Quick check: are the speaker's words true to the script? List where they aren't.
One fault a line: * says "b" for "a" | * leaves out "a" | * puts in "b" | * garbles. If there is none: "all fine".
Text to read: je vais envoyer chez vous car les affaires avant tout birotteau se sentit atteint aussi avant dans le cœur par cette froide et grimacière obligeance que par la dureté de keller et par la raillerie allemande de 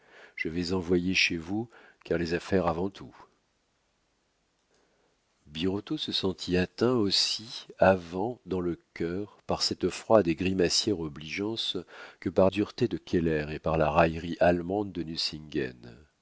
* leaves out "la"